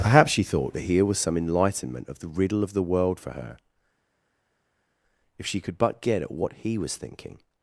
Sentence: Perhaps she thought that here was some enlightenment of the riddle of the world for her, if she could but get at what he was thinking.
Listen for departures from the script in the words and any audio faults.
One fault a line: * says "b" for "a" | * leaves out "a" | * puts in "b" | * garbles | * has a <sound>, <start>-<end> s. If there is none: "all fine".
all fine